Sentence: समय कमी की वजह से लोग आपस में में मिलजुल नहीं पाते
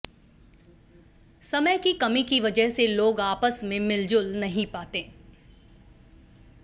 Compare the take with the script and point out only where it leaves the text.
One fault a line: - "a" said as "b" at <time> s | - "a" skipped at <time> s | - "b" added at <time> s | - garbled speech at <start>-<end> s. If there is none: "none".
- "की" added at 1.8 s
- "में" skipped at 3.8 s